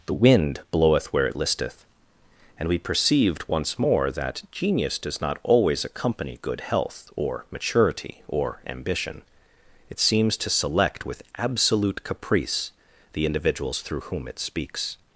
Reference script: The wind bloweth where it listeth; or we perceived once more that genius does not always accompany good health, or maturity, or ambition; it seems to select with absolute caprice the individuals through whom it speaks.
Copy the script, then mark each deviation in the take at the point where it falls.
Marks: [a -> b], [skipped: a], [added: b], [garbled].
The wind bloweth where it listeth; [or -> and] we perceived once more that genius does not always accompany good health, or maturity, or ambition; it seems to select with absolute caprice the individuals through whom it speaks.